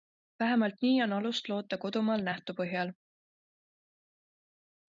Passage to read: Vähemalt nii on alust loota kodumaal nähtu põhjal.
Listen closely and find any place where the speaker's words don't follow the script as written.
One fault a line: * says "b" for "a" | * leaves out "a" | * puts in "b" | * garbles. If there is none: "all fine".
all fine